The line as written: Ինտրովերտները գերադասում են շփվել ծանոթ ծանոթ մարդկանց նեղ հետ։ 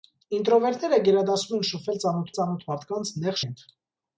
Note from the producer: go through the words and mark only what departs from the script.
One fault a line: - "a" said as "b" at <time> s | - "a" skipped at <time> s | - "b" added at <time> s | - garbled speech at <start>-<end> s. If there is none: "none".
none